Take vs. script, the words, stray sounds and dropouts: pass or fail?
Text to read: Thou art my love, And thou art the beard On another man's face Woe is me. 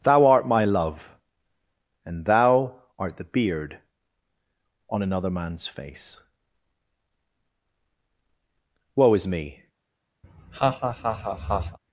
fail